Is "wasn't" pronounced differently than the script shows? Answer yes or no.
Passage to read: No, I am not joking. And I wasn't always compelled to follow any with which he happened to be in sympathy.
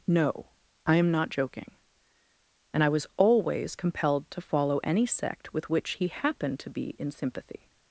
yes